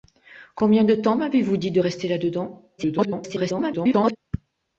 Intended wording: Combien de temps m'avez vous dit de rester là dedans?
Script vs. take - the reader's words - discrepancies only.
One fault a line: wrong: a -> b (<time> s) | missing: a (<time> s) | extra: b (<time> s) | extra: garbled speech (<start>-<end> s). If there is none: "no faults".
extra: garbled speech (2.8-4.2 s)